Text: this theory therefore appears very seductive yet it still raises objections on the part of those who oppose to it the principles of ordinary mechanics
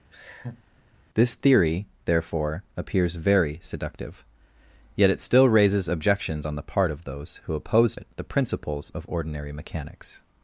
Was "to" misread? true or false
true